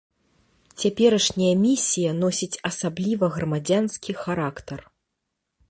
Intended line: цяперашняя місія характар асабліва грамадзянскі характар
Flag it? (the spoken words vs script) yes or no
yes